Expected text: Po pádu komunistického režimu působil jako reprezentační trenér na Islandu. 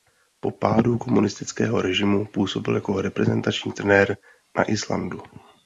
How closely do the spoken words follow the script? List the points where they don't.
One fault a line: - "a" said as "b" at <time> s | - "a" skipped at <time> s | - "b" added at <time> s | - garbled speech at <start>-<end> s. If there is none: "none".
none